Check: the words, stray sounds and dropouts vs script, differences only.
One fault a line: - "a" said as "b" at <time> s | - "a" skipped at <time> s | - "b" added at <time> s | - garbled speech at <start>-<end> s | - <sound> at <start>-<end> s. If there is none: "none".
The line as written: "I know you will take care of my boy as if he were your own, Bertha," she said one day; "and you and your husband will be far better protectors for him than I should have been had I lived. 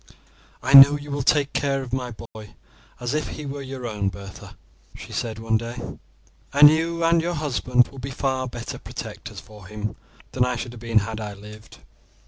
- dropout at 2.3-2.4 s